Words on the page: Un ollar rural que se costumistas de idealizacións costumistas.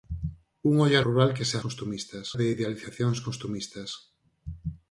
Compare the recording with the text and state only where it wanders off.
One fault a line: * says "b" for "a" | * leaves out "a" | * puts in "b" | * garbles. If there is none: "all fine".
all fine